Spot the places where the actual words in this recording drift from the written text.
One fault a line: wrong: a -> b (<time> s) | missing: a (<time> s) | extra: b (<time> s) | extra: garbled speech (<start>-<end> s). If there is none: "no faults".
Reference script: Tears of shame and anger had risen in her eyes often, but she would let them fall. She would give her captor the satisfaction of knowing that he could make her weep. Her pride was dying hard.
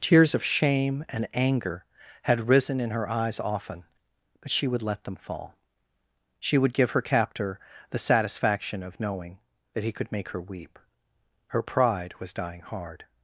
no faults